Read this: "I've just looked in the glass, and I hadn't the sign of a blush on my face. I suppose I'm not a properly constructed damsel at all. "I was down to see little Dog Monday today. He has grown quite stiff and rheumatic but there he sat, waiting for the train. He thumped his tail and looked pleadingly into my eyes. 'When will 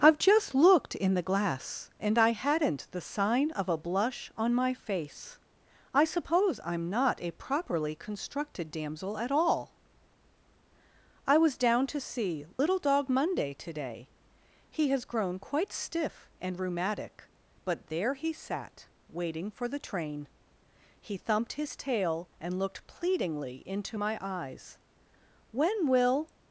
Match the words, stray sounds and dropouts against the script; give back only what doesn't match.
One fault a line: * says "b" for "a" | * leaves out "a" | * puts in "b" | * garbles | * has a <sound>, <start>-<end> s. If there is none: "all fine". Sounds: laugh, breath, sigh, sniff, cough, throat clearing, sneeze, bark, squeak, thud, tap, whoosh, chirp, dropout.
* has a dropout, 12.5-12.6 s